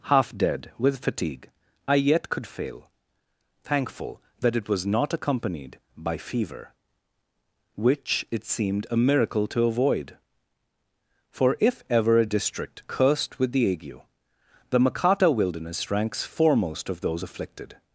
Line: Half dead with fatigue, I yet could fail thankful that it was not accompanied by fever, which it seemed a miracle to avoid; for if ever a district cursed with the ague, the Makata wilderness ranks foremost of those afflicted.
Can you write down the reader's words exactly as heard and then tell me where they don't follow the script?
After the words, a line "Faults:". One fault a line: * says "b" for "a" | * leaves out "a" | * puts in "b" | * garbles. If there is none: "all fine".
Half dead with fatigue, I yet could fail thankful that it was not accompanied by fever, which it seemed a miracle to avoid; for if ever a district cursed with the ague, the Makata wilderness ranks foremost of those afflicted.
Faults:
all fine